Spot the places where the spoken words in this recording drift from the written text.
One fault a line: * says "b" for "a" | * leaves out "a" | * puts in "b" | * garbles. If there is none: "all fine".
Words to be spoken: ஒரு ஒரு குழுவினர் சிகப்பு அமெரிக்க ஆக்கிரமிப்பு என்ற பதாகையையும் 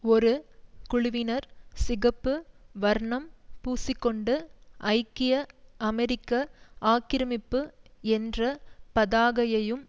* leaves out "ஒரு"
* puts in "வர்ணம் பூசிக்கொண்டு ஐக்கிய"